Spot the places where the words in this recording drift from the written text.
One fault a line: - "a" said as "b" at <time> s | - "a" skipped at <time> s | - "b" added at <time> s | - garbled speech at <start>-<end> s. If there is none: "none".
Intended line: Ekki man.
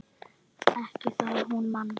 - "það hún" added at 1.2 s